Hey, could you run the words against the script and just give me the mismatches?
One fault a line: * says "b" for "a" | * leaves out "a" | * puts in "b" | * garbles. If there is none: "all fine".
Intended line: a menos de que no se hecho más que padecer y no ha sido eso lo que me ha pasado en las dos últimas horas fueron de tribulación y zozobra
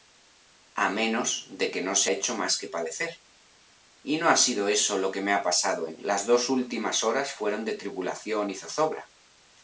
all fine